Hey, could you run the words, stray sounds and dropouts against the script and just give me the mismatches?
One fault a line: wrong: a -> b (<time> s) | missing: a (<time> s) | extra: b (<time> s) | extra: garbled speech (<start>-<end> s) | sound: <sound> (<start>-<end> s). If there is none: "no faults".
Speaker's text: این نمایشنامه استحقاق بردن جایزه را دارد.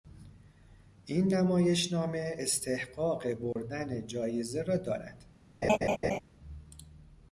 sound: dropout (3.5-3.6 s)
sound: laugh (5.6-6.2 s)